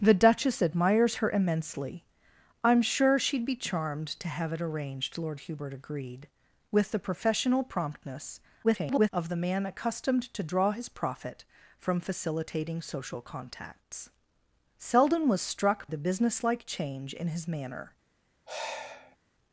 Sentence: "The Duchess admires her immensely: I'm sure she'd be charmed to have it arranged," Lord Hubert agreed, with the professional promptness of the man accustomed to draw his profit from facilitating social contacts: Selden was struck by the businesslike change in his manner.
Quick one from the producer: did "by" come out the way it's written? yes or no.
no